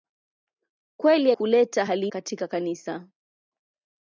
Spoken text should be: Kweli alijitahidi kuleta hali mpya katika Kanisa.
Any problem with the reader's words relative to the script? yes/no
yes